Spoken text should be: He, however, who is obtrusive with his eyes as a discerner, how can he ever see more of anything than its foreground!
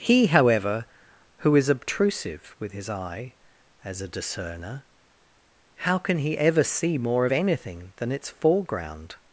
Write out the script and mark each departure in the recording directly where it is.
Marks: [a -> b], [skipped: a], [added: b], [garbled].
He, however, who is obtrusive with his [eyes -> eye] as a discerner, how can he ever see more of anything than its foreground!